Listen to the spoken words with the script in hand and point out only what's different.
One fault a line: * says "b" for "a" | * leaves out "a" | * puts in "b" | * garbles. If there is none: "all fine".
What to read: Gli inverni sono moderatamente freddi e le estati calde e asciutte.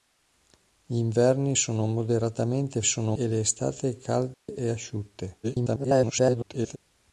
* says "sono" for "freddi"
* garbles